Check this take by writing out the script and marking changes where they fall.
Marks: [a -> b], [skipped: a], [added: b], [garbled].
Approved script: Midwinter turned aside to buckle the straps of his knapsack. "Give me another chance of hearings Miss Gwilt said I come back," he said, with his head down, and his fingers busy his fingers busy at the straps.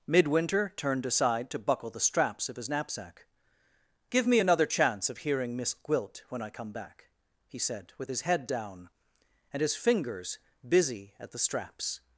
Midwinter turned aside to buckle the straps of his knapsack. "Give me another chance of [hearings -> hearing] Miss Gwilt [said -> when] I come back," he said, with his head down, and his fingers busy [skipped: his fingers busy] at the straps.